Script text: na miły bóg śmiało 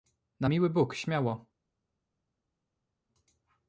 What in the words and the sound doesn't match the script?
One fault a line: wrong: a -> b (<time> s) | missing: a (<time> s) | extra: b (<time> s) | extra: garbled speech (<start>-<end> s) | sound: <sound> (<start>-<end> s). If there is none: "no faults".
no faults